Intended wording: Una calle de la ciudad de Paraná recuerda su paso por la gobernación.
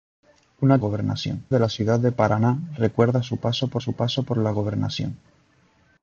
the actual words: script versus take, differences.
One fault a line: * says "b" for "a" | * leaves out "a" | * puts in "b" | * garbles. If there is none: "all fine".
* says "gobernación" for "calle"
* puts in "su paso por"